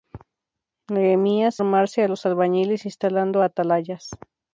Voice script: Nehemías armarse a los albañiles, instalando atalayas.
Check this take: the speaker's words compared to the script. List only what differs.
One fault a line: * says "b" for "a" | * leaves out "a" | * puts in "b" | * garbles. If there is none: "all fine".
all fine